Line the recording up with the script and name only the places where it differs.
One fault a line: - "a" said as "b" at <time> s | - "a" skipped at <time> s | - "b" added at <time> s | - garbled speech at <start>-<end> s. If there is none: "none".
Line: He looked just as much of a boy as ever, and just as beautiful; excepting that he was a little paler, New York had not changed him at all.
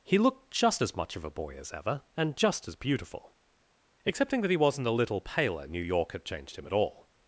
- "was" said as "wasn't" at 4.6 s
- "not" skipped at 6.2 s